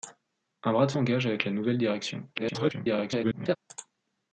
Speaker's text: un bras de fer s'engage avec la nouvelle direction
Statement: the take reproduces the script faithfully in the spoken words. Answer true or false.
false